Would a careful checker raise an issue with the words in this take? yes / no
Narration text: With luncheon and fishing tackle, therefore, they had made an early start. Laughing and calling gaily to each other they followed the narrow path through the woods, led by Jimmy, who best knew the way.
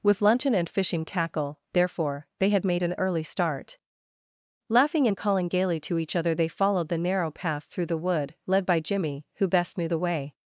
yes